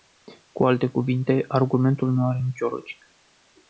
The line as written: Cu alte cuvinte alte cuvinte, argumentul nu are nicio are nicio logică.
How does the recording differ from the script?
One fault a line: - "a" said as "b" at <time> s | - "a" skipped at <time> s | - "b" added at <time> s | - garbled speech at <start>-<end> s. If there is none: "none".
- "alte cuvinte" skipped at 1.4 s
- "are nicio" skipped at 2.7 s